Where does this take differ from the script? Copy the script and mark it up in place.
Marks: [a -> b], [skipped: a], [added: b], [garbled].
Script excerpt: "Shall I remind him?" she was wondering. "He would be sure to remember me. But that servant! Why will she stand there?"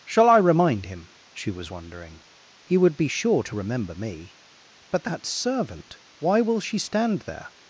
"Shall I remind him?" she was wondering. "He would be sure to remember me. But that servant! Why will she stand there?"